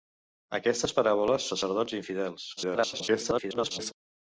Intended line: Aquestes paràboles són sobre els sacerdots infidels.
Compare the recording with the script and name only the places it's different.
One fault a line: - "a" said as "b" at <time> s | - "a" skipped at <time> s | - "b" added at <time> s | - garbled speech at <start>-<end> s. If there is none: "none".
- "són sobre els" skipped at 1.5 s
- garbled speech at 2.6-3.9 s